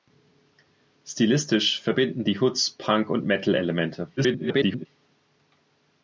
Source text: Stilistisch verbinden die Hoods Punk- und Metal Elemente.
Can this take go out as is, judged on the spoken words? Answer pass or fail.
fail